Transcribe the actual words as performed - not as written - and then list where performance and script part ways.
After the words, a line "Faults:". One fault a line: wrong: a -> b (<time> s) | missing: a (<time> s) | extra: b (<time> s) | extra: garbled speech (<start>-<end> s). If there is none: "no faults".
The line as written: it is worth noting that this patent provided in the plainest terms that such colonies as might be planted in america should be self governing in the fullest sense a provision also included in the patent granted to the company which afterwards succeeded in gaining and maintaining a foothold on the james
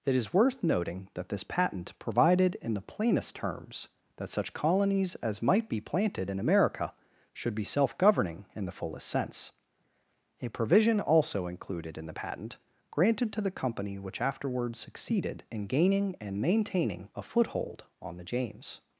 it is worth noting that this patent provided in the plainest terms that such colonies as might be planted in america should be self governing in the fullest sense a provision also included in the patent granted to the company which afterwards succeeded in gaining and maintaining a foothold on the james
Faults:
no faults